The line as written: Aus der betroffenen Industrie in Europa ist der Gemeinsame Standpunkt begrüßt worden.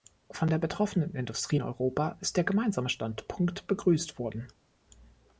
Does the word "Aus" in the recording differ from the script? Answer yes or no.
yes